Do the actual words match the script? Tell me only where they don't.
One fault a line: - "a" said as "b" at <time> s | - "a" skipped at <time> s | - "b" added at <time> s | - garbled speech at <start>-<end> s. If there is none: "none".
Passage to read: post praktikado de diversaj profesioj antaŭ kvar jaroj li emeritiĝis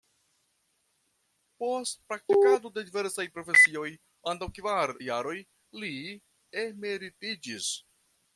none